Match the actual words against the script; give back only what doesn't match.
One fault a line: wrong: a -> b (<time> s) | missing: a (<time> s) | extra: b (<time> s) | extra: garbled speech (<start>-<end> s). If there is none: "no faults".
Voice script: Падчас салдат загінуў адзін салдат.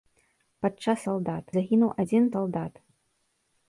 no faults